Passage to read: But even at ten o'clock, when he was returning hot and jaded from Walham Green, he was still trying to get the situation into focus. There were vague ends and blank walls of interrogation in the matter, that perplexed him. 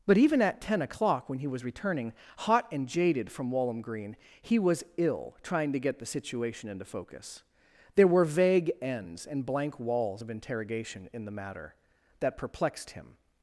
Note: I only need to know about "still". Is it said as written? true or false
false